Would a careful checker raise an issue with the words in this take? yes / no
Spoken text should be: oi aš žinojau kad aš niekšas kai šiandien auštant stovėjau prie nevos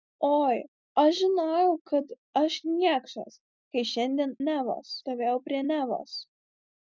yes